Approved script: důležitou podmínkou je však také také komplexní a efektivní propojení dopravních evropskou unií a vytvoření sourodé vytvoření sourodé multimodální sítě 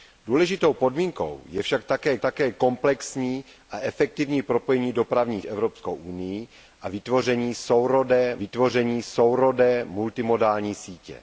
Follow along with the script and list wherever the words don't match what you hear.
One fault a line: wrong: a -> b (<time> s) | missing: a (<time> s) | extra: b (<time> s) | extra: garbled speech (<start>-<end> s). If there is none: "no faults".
no faults